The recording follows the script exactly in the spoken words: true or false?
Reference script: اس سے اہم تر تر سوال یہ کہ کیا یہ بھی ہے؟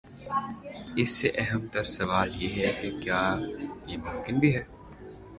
false